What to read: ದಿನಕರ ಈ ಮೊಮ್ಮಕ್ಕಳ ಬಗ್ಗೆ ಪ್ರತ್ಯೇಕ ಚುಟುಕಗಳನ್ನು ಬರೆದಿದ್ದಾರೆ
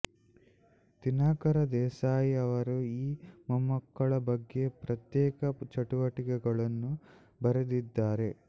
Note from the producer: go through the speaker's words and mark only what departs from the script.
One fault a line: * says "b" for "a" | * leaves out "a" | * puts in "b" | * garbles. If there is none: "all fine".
* puts in "ದೇಸಾಯಿ ಅವರು"